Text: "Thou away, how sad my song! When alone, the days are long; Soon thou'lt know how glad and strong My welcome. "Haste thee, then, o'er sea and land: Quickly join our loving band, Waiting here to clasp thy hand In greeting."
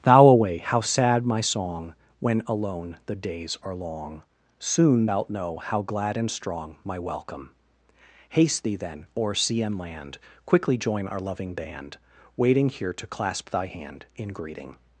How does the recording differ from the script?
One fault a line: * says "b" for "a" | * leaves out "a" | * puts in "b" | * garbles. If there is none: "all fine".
all fine